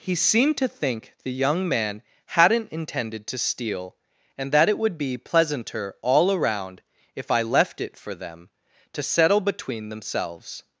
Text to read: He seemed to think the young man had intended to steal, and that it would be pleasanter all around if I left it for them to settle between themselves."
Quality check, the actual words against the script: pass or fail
fail